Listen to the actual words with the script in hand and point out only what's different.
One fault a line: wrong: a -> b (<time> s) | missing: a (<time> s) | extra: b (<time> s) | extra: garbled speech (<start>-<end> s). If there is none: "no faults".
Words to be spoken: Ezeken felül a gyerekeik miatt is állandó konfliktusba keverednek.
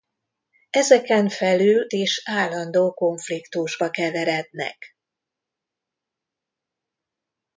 missing: a gyerekeik miatt (1.9 s)